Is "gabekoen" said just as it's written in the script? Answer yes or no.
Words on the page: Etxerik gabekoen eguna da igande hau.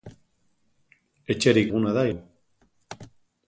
no